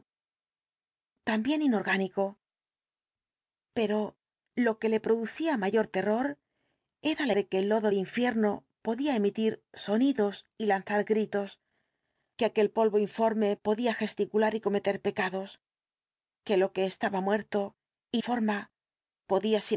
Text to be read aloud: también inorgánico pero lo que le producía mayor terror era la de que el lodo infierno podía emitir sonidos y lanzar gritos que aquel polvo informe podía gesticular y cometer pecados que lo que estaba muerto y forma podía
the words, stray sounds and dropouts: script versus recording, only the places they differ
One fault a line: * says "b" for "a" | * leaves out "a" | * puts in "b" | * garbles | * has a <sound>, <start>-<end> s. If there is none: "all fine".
all fine